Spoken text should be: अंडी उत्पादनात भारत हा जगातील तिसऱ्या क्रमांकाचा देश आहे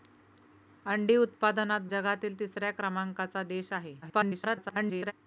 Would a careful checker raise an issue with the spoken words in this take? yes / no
yes